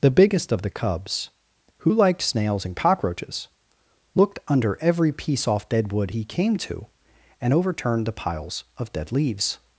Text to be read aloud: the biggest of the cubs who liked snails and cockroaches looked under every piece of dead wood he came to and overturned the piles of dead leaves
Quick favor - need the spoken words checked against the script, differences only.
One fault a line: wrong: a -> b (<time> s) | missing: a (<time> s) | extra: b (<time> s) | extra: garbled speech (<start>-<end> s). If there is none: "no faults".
wrong: of -> off (5.5 s)